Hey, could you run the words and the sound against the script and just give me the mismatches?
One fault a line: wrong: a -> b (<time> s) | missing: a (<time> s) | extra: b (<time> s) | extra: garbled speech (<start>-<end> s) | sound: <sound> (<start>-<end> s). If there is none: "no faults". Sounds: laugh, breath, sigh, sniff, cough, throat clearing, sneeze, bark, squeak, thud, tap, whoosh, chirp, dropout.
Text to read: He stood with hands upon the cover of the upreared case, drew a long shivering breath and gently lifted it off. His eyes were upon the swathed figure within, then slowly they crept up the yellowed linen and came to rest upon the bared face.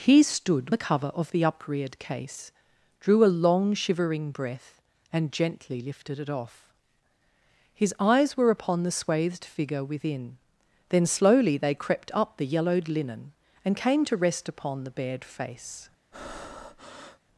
missing: with hands upon (0.7 s)
sound: breath (16.1-17.2 s)